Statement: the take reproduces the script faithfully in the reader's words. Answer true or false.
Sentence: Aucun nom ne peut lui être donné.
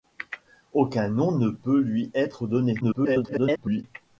false